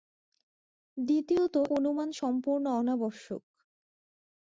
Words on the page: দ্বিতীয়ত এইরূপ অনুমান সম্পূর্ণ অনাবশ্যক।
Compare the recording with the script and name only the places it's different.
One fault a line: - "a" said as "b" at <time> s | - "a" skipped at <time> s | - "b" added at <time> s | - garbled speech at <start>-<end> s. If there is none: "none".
- "এইরূপ" skipped at 1.6 s